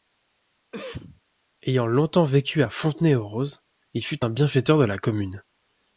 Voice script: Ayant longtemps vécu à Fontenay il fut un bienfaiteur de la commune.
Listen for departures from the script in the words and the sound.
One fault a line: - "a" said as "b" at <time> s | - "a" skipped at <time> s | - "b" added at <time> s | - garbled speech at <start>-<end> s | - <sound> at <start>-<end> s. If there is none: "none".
- cough at 0.7-1.2 s
- "aux Roses" added at 3.1 s